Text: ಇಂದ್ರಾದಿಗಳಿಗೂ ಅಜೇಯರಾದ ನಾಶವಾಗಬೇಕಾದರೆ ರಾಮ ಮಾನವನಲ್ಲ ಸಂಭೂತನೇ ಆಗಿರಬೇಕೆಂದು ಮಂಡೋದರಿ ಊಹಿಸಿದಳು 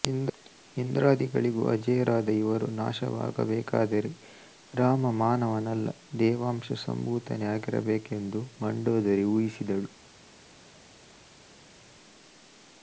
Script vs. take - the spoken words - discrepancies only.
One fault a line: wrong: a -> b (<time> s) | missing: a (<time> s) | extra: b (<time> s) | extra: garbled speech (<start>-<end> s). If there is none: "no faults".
extra: ಇವರು (2.4 s)
extra: ದೇವಾಂಶ (6.2 s)